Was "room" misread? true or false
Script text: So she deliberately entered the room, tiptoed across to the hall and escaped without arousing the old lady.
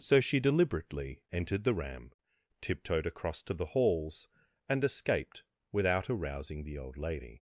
true